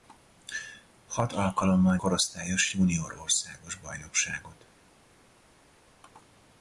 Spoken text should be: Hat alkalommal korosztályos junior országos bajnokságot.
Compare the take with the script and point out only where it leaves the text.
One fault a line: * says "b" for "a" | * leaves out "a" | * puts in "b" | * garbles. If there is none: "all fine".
all fine